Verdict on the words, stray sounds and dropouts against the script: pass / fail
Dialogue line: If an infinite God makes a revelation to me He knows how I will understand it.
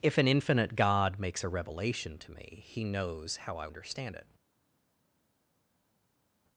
fail